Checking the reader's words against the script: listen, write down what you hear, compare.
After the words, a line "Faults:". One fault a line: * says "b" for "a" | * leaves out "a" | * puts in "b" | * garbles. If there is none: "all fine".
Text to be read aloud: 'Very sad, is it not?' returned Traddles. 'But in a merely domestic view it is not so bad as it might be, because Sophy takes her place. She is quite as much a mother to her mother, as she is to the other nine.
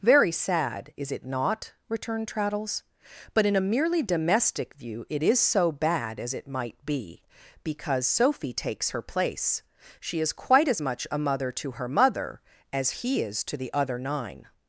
'Very sad, is it not?' returned Traddles. 'But in a merely domestic view it is so bad as it might be, because Sophy takes her place. She is quite as much a mother to her mother, as he is to the other nine.
Faults:
* leaves out "not"
* says "he" for "she"